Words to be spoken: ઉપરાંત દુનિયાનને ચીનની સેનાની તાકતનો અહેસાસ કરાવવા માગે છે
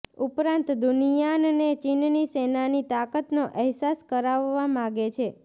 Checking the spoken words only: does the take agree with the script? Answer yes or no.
yes